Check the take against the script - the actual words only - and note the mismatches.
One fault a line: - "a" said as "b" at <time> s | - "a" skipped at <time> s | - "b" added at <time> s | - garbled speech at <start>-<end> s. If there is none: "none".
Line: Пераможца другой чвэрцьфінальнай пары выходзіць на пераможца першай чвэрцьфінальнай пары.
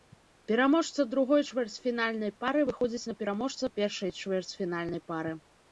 none